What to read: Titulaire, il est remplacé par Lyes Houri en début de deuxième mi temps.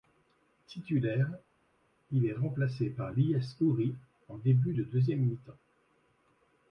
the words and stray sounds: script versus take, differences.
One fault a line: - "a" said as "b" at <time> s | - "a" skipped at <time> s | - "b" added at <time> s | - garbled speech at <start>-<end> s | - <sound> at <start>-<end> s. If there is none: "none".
none